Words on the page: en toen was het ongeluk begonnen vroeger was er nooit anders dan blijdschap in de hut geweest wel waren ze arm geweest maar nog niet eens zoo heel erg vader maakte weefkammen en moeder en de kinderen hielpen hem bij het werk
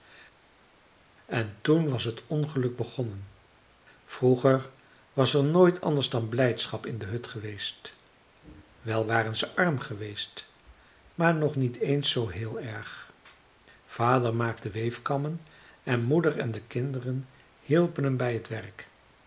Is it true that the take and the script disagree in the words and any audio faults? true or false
false